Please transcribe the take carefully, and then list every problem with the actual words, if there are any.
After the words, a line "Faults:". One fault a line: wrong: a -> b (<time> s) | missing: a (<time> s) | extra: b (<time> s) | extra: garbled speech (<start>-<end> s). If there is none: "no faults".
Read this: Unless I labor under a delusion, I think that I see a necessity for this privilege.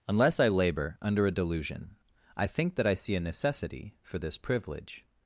Unless I labor under a delusion, I think that I see a necessity for this privilege.
Faults:
no faults